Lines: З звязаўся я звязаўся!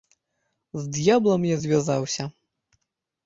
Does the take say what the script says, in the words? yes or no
no